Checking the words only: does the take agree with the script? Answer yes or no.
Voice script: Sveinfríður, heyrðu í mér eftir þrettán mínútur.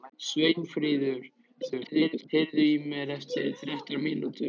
no